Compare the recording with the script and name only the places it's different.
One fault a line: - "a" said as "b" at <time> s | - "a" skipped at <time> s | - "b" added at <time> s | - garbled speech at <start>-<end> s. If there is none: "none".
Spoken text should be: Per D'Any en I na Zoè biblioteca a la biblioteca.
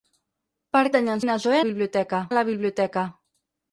none